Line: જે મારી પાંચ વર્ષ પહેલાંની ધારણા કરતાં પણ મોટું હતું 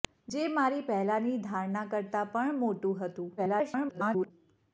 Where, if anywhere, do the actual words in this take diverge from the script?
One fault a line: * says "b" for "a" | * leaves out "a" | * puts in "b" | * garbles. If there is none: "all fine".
* leaves out "પાંચ વર્ષ"
* garbles